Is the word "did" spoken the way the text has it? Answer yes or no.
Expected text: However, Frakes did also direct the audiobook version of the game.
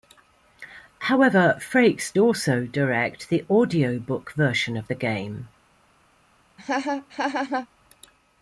no